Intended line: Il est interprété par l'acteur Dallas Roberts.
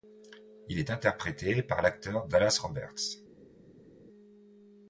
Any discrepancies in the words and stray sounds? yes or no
no